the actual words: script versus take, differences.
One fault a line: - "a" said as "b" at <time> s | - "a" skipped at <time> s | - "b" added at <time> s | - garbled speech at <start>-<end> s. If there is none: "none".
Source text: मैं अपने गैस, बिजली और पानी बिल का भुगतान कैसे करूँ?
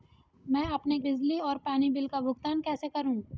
- "गैस" skipped at 1.0 s